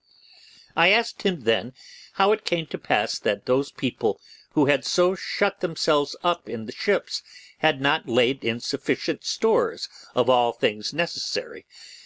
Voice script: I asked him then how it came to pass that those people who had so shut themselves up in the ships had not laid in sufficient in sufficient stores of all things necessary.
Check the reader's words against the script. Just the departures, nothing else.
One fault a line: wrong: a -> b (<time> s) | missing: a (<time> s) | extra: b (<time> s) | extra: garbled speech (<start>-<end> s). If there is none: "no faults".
missing: in sufficient (9.2 s)